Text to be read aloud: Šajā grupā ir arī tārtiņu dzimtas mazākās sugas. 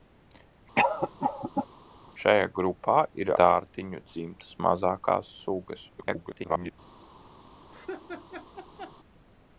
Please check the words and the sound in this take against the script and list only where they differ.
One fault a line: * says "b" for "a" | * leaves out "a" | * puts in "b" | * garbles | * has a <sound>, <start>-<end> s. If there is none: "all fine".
* has a cough, 0.8-1.7 s
* leaves out "arī"
* garbles
* has a laugh, 7.7-9.0 s